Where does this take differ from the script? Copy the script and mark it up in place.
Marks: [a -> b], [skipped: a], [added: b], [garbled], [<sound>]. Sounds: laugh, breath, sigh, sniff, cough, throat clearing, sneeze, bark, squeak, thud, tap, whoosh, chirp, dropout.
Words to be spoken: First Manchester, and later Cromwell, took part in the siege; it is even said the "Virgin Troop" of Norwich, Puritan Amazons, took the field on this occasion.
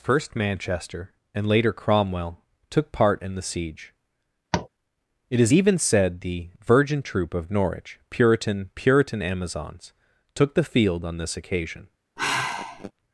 First Manchester, and later Cromwell, took part in the siege; [tap] it is even said the "Virgin Troop" of Norwich, Puritan [added: Puritan] Amazons, took the field on this occasion. [sigh]